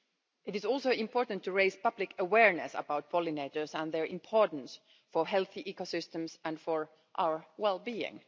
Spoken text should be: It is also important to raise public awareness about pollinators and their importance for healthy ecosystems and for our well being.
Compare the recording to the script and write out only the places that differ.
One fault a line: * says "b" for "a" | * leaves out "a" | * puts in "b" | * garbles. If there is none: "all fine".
all fine